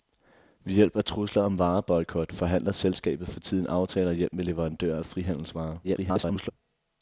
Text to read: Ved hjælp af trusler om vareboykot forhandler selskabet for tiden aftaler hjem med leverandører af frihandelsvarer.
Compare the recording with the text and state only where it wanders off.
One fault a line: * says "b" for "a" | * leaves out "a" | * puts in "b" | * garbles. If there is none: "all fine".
* garbles